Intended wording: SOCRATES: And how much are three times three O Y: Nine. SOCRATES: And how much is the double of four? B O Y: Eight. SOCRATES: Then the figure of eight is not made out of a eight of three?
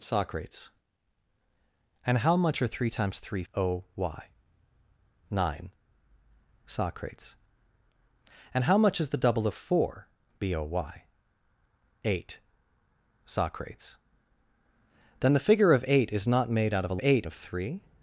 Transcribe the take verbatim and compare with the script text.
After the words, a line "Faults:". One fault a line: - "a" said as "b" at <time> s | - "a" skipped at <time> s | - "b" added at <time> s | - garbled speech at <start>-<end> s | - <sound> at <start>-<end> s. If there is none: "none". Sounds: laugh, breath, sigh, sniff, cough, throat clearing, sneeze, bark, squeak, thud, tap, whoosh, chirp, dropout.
SOCRATES: And how much are three times three O Y: Nine. SOCRATES: And how much is the double of four? B O Y: Eight. SOCRATES: Then the figure of eight is not made out of a eight of three?
Faults:
none